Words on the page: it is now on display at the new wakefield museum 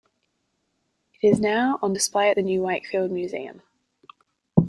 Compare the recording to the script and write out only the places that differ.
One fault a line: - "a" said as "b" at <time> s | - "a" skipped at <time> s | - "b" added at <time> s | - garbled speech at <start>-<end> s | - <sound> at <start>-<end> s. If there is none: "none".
none